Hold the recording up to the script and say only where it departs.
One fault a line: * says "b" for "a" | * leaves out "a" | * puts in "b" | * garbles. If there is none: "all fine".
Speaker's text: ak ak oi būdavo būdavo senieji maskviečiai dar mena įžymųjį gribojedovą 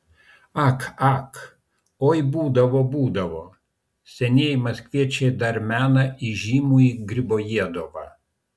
all fine